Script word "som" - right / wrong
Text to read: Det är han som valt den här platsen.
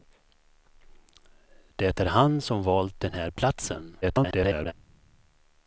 right